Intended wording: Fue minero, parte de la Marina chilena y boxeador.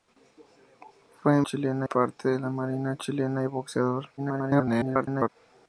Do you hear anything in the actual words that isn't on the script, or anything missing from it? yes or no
yes